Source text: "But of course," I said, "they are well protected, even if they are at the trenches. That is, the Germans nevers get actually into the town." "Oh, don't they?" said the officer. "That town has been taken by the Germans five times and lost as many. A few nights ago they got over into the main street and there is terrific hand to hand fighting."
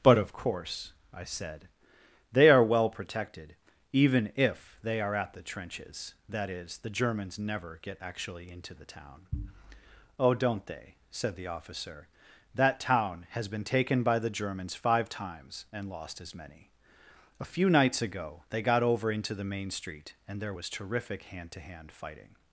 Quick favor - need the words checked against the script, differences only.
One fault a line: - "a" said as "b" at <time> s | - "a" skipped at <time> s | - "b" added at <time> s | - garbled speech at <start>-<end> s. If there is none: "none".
- "nevers" said as "never" at 7.4 s
- "is" said as "was" at 20.5 s